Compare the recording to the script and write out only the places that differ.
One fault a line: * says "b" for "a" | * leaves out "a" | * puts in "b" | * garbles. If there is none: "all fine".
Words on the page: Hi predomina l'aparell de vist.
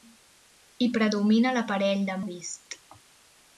all fine